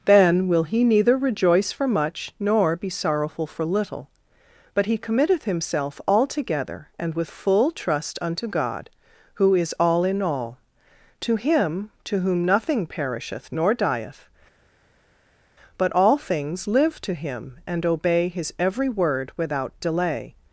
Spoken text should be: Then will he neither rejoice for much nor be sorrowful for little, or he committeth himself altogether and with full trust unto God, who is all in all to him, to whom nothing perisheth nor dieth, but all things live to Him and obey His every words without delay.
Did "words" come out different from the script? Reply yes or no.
yes